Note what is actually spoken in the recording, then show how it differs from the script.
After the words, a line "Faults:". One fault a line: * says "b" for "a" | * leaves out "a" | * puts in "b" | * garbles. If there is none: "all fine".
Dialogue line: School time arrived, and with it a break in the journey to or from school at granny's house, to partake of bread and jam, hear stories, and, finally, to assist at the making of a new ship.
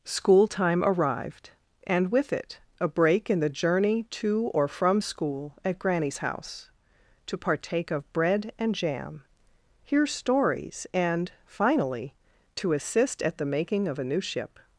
School time arrived, and with it a break in the journey to or from school at granny's house, to partake of bread and jam, hear stories, and, finally, to assist at the making of a new ship.
Faults:
all fine